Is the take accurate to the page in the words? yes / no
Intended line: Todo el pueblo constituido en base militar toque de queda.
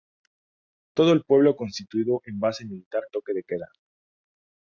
yes